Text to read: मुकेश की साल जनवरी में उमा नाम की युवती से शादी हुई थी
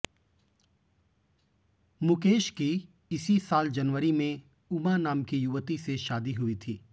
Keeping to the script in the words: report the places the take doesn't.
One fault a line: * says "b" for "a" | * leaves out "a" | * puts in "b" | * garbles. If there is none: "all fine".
* puts in "इसी"